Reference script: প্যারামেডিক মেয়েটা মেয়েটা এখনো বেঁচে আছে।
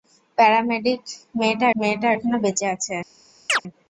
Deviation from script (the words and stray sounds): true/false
true